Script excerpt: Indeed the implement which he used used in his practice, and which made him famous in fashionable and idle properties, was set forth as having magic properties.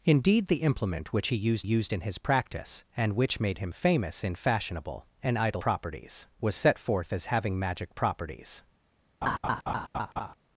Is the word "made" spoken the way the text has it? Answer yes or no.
yes